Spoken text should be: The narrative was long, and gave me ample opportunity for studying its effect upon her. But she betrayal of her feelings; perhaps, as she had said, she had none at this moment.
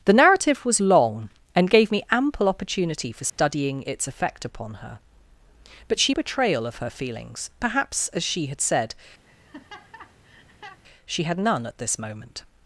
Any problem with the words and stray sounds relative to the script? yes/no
yes